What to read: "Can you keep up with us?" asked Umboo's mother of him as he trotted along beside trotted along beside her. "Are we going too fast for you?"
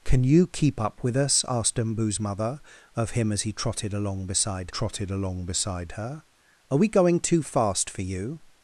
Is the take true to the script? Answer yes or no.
yes